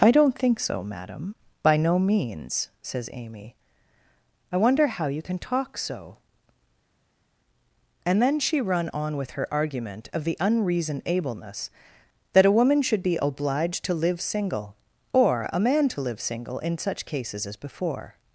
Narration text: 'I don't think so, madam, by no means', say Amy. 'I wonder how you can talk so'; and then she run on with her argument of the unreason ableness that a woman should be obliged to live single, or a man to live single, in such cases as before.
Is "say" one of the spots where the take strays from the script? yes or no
yes